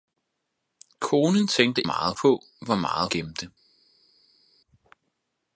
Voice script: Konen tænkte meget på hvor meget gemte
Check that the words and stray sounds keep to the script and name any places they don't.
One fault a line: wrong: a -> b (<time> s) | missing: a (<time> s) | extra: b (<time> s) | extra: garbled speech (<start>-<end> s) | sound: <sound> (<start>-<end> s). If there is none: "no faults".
no faults